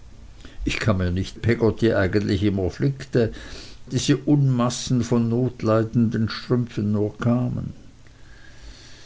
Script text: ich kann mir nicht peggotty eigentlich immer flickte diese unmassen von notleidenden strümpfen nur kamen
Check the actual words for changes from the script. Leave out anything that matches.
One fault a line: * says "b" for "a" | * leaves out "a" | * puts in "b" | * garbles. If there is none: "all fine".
all fine